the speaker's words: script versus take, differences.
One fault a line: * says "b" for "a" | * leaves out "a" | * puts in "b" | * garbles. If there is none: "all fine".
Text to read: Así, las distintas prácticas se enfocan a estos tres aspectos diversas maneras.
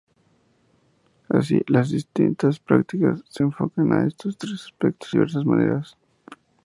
all fine